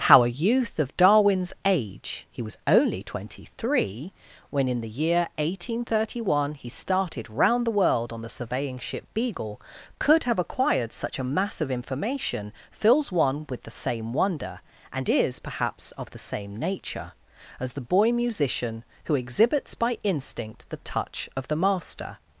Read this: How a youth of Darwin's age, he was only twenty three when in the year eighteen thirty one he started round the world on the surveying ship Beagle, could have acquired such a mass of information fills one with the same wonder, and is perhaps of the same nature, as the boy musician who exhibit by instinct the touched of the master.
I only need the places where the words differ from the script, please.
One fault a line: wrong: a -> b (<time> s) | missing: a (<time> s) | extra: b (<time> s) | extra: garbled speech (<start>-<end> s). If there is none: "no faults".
wrong: exhibit -> exhibits (19.1 s)
wrong: touched -> touch (20.8 s)